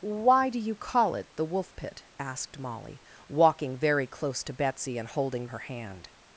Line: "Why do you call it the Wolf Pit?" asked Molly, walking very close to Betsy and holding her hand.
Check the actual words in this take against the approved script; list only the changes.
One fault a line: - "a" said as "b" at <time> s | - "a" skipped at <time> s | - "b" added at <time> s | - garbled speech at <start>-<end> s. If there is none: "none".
none